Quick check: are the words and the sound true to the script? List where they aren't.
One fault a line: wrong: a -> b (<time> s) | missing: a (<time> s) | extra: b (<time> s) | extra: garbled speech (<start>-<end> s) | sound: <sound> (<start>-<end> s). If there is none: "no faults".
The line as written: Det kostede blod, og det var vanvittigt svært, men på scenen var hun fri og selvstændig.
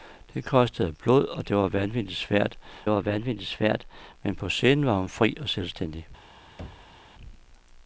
extra: var vanvittigt svært (2.9 s)
sound: thud (6.6-7.0 s)